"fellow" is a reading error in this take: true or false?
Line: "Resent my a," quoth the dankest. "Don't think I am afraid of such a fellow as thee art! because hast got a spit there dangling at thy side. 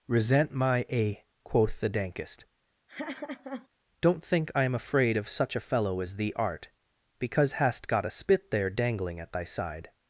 false